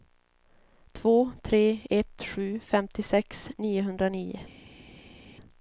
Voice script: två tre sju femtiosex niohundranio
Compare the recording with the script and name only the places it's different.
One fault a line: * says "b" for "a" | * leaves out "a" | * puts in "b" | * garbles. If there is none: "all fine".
* puts in "ett"